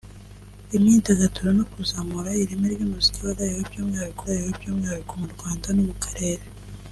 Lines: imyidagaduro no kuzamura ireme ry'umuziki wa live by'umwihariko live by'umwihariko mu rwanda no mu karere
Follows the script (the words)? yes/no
yes